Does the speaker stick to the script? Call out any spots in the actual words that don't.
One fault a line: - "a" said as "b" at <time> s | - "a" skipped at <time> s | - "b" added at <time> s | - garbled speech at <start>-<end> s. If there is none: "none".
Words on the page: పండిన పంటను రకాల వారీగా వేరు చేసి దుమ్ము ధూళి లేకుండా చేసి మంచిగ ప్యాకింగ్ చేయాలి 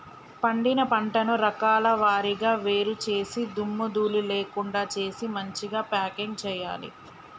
none